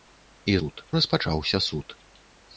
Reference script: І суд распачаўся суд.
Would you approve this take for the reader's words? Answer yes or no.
yes